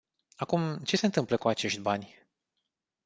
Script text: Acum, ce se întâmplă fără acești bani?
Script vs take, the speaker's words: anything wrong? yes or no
yes